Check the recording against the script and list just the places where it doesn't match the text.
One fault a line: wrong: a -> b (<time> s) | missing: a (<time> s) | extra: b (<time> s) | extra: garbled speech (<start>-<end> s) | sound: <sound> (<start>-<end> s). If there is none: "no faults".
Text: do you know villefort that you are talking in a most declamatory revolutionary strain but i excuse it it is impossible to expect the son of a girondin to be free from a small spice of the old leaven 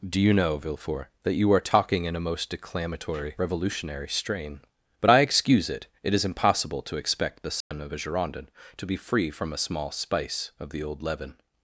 sound: dropout (7.6-7.7 s)